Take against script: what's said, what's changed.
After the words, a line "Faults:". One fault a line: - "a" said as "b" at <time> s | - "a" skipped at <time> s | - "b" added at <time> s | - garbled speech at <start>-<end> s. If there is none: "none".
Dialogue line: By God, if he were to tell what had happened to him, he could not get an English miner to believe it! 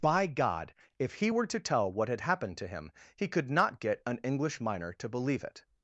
By God, if he were to tell what had happened to him, he could not get an English miner to believe it!
Faults:
none